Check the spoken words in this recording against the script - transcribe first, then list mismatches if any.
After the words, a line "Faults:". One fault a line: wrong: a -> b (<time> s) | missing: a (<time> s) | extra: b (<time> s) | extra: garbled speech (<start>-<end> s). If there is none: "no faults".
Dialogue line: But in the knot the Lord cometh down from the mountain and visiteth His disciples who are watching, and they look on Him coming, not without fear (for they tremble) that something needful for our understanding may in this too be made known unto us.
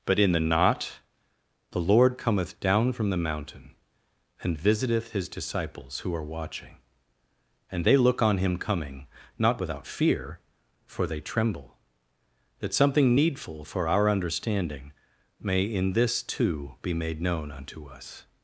But in the knot the Lord cometh down from the mountain and visiteth His disciples who are watching, and they look on Him coming, not without fear (for they tremble) that something needful for our understanding may in this too be made known unto us.
Faults:
no faults